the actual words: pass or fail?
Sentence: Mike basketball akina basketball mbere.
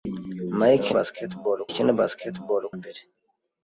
pass